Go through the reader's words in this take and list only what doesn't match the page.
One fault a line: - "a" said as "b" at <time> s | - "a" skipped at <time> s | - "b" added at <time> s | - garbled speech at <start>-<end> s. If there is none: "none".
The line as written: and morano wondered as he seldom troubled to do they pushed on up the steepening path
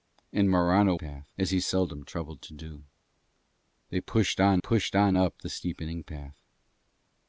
- "wondered" said as "path" at 0.9 s
- "pushed on" added at 4.6 s